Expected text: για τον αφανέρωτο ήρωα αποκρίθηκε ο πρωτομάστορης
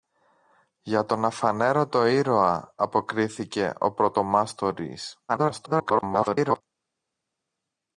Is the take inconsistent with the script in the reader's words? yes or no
yes